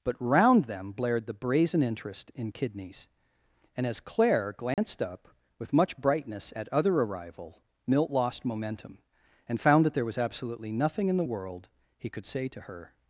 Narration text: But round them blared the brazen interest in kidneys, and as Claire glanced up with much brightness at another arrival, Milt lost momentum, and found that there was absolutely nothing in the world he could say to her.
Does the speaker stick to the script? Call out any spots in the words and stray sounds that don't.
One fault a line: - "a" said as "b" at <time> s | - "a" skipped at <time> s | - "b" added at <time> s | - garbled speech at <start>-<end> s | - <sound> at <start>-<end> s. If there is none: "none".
- dropout at 4.7-4.8 s
- "another" said as "other" at 6.7 s